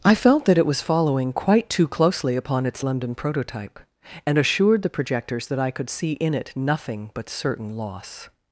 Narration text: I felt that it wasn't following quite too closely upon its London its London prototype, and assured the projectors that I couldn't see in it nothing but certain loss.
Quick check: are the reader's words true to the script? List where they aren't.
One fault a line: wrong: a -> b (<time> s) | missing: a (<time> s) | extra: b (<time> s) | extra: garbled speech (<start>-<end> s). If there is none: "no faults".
wrong: wasn't -> was (0.7 s)
missing: its London (3.2 s)
wrong: couldn't -> could (5.7 s)